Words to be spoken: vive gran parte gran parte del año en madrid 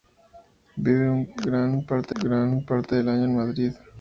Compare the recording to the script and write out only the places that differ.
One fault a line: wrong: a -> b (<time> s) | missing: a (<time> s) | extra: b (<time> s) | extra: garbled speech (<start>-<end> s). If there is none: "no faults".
no faults